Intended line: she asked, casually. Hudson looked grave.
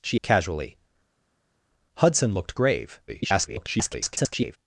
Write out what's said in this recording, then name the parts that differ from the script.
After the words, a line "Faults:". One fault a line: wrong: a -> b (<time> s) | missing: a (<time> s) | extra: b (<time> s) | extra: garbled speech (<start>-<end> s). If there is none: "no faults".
she casually. Hudson looked grave. [garbled]
Faults:
missing: asked (0.2 s)
extra: garbled speech (3.1-4.6 s)